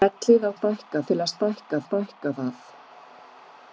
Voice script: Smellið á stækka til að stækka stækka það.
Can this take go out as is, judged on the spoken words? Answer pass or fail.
pass